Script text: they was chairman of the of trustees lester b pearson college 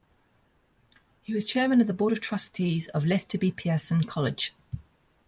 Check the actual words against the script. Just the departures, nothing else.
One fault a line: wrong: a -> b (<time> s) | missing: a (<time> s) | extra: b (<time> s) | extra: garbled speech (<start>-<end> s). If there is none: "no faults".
wrong: they -> he (1.2 s)
extra: board (1.9 s)
extra: of (2.9 s)